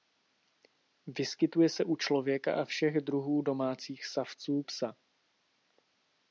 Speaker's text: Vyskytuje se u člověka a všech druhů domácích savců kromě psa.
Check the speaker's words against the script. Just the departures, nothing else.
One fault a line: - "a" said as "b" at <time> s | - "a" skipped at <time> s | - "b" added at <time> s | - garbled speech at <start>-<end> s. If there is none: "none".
- "kromě" skipped at 4.6 s